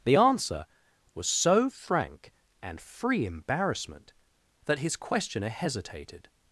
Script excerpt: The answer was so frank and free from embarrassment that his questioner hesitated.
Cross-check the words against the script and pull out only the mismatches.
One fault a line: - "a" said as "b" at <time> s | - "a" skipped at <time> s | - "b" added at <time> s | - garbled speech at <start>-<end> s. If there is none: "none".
- "from" skipped at 3.3 s